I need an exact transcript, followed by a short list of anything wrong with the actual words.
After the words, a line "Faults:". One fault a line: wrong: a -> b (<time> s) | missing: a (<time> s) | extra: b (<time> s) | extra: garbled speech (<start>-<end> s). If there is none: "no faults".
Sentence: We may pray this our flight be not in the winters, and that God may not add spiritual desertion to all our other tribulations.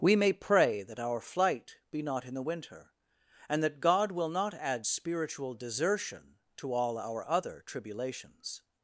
We may pray that our flight be not in the winter, and that God will not add spiritual desertion to all our other tribulations.
Faults:
wrong: this -> that (0.8 s)
wrong: winters -> winter (2.4 s)
wrong: may -> will (4.1 s)